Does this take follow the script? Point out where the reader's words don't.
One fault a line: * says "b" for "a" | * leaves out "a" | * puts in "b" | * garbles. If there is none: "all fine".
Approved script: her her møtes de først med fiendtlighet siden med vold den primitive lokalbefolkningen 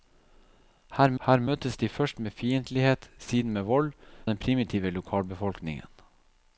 all fine